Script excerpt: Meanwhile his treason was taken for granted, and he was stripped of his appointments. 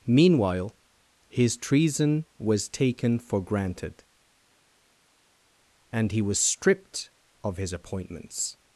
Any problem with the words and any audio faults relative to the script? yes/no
no